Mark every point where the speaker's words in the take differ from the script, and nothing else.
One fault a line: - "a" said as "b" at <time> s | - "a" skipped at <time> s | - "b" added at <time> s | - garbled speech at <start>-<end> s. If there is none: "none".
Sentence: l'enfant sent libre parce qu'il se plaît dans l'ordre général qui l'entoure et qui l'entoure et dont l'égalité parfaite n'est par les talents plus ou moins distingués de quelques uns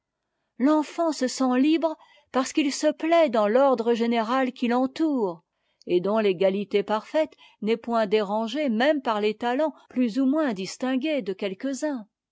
- "se" added at 1.1 s
- "qui l'entoure et" skipped at 6.0 s
- "point dérangée même" added at 7.7 s